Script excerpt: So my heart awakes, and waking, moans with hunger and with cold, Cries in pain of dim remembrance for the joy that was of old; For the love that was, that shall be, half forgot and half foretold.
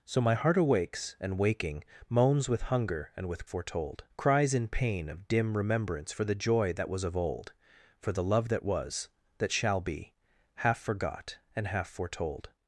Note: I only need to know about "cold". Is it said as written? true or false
false